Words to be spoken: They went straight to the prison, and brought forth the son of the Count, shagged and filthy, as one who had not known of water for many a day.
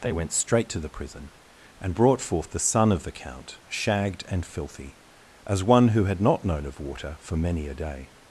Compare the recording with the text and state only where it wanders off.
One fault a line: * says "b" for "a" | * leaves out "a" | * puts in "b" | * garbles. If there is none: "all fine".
all fine